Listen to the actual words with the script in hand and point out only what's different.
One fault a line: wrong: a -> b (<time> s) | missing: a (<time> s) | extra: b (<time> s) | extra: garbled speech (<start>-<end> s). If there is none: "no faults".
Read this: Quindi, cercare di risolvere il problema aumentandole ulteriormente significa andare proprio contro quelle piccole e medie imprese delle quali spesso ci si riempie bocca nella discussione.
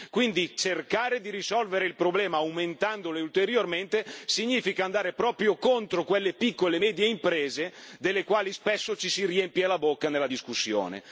extra: la (9.7 s)